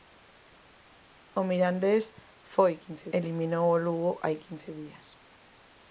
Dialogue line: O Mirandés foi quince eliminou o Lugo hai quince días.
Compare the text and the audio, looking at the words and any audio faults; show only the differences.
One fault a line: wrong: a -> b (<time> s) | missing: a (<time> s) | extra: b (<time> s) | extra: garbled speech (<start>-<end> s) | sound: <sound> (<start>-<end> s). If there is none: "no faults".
no faults